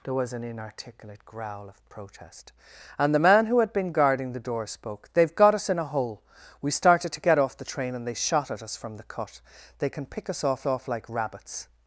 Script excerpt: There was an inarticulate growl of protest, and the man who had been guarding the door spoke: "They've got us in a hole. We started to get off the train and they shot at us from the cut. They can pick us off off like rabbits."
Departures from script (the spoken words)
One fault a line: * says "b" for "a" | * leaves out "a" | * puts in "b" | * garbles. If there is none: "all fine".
all fine